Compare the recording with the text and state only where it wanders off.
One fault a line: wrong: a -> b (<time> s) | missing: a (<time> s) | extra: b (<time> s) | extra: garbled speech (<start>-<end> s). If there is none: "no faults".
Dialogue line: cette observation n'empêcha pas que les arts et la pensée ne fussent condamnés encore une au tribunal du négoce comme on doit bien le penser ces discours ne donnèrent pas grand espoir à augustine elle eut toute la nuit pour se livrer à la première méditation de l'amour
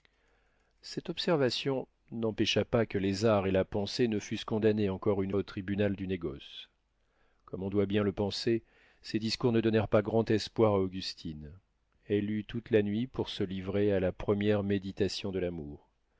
no faults